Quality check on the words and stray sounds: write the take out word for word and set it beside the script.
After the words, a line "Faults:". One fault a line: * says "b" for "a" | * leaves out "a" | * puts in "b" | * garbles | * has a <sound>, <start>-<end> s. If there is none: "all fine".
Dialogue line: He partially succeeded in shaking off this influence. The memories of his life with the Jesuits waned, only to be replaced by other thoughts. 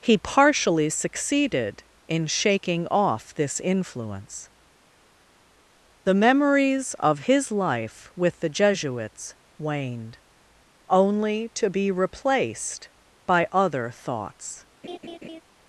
He partially succeeded in shaking off this influence. The memories of his life with the Jesuits waned, only to be replaced by other thoughts.
Faults:
* has a laugh, 14.8-15.4 s